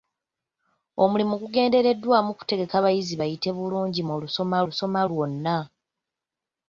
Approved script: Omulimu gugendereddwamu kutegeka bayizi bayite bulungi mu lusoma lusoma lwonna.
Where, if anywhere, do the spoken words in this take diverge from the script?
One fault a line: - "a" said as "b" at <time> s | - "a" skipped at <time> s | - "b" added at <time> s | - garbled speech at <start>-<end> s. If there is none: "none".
none